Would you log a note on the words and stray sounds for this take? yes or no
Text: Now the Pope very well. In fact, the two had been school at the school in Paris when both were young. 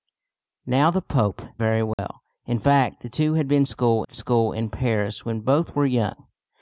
yes